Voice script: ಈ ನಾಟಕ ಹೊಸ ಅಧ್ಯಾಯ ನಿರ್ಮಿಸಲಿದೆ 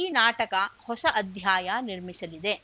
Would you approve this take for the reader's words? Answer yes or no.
yes